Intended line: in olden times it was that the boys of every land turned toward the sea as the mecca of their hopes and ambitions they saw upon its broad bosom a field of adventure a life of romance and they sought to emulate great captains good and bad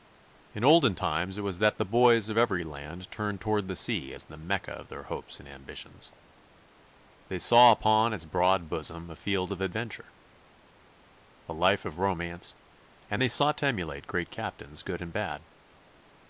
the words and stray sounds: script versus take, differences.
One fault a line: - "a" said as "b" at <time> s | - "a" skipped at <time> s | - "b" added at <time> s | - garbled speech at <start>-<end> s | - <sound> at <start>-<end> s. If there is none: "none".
none